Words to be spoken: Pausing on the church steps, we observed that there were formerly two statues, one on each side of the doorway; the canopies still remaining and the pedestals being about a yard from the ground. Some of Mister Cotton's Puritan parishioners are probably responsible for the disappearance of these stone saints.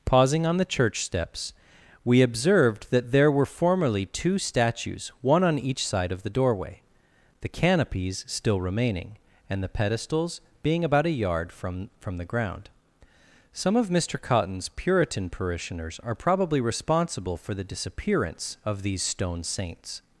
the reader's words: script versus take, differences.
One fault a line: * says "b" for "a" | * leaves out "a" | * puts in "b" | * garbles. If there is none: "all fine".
* puts in "from"